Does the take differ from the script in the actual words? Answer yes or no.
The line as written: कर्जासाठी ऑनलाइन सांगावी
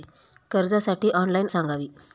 no